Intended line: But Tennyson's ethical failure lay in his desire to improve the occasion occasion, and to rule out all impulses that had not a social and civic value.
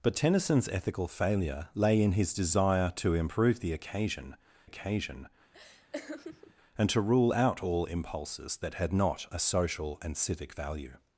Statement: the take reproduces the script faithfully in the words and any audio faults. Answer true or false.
false